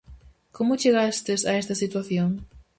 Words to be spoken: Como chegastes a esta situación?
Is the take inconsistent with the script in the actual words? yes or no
no